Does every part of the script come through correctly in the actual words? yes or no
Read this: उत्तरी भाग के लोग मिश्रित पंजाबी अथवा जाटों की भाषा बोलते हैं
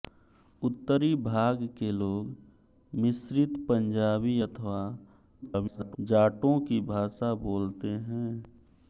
no